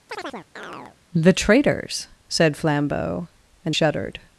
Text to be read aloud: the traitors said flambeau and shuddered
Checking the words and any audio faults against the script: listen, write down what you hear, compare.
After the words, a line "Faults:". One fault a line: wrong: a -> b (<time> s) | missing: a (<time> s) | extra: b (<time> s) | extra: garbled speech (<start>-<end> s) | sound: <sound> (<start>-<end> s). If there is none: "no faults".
the traitors said flambeau and shuddered
Faults:
sound: chirp (0.1-1.0 s)